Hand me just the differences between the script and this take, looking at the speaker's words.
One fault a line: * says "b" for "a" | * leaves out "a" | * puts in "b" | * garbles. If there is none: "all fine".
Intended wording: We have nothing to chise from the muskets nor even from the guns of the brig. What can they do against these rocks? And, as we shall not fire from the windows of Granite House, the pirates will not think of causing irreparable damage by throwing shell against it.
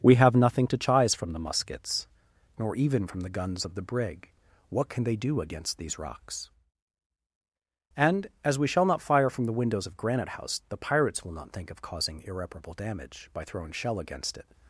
all fine